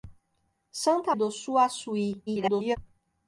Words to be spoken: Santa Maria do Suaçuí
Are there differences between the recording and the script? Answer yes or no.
yes